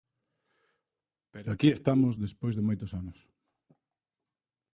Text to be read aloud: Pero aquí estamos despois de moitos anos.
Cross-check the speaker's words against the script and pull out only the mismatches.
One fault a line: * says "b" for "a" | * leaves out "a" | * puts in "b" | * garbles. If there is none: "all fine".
all fine